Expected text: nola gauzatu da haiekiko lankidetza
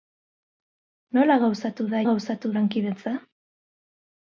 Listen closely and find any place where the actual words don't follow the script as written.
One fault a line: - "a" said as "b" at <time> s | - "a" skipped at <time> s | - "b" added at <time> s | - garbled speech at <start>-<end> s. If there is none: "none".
- "haiekiko" said as "gauzatu" at 2.1 s